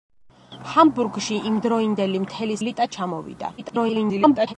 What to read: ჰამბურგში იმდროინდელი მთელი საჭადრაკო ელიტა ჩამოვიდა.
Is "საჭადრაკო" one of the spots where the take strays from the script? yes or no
yes